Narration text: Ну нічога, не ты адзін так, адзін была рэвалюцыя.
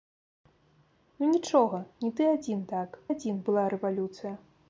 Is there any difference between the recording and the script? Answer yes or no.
no